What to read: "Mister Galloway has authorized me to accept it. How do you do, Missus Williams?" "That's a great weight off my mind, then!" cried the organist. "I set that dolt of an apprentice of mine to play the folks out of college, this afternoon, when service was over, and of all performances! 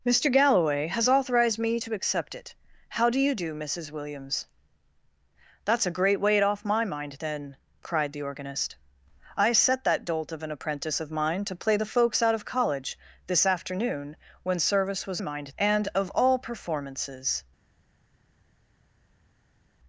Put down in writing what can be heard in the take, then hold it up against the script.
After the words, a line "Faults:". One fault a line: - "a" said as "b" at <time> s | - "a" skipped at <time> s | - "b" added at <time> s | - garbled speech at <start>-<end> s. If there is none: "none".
"Mister Galloway has authorized me to accept it. How do you do, Missus Williams?" "That's a great weight off my mind, then!" cried the organist. "I set that dolt of an apprentice of mine to play the folks out of college, this afternoon, when service was mind, and of all performances!
Faults:
- "over" said as "mind" at 15.2 s